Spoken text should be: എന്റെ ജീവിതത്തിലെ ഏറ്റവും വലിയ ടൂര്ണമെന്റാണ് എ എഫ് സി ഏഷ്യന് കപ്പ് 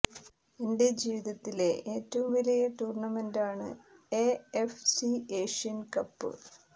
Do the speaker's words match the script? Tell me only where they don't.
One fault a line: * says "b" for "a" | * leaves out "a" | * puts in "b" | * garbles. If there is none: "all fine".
all fine